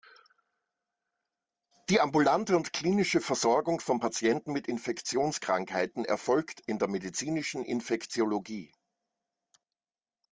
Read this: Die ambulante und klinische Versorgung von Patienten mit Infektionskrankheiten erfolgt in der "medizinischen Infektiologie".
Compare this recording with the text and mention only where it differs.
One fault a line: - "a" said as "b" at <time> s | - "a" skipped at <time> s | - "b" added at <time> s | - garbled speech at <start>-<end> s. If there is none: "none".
none